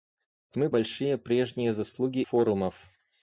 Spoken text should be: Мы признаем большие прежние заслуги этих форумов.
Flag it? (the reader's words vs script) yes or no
yes